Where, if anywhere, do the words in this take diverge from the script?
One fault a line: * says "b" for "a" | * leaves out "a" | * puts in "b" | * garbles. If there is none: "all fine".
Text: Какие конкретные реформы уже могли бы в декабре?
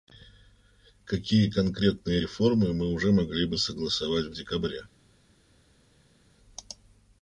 * puts in "мы"
* puts in "согласовать"